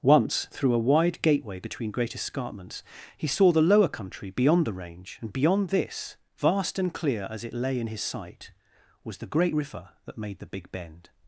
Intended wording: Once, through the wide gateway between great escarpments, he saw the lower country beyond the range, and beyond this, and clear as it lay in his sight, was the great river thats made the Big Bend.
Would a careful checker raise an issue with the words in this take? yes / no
yes